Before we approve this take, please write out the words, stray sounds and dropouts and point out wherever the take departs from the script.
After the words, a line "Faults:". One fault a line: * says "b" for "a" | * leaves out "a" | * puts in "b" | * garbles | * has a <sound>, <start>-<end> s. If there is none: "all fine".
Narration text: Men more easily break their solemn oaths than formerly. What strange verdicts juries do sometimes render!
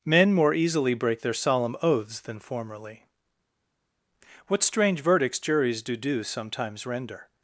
Men more easily break their solemn oaths than formerly. What strange verdicts juries do do sometimes render!
Faults:
* puts in "do"